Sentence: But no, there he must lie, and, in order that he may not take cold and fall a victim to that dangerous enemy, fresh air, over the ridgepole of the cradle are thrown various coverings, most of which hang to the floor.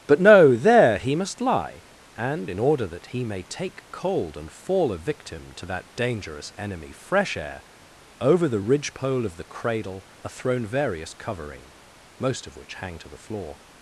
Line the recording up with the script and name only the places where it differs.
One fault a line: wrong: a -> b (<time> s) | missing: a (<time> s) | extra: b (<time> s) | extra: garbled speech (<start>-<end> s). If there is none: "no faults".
missing: not (3.4 s)
wrong: coverings -> covering (11.1 s)